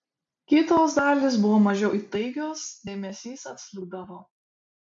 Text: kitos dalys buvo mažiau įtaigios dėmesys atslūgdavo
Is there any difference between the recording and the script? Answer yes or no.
no